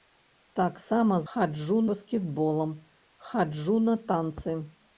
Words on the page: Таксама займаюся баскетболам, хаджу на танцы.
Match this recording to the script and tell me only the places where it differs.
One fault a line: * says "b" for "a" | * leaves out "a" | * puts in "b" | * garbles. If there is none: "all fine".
* says "хаджу" for "займаюся"